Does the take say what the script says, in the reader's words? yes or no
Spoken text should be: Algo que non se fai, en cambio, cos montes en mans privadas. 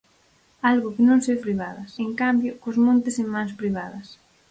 no